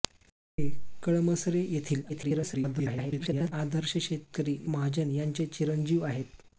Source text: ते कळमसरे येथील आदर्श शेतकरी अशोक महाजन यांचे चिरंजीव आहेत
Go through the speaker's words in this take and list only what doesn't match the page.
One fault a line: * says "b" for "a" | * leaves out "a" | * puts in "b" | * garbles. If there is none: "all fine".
* garbles
* leaves out "अशोक"